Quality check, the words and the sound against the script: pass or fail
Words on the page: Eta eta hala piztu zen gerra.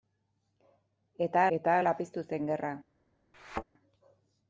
fail